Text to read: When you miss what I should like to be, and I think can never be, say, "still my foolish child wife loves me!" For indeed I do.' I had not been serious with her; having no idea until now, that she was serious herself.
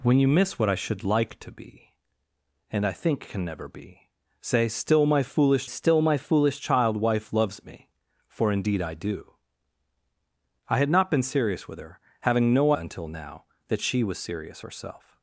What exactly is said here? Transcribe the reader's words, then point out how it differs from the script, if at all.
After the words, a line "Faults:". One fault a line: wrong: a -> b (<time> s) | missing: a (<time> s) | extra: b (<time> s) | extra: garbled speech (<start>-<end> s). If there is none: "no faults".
When you miss what I should like to be, and I think can never be, say, "still my foolish still my foolish child wife loves me!" For indeed I do.' I had not been serious with her; having no until now, that she was serious herself.
Faults:
extra: still my foolish (5.6 s)
missing: idea (12.7 s)